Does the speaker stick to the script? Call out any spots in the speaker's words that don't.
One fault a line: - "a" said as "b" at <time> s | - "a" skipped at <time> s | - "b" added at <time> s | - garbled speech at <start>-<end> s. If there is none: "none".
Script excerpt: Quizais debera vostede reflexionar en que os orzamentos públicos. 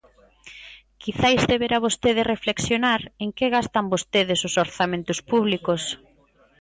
- "gastan vostedes" added at 3.5 s